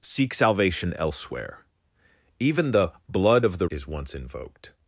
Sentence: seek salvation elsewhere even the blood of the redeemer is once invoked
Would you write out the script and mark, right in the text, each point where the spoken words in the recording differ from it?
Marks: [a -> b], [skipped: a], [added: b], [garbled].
seek salvation elsewhere even the blood of the [skipped: redeemer] is once invoked